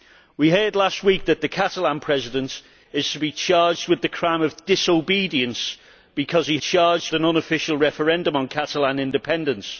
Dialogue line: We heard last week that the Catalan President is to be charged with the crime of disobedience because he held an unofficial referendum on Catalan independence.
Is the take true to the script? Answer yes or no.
no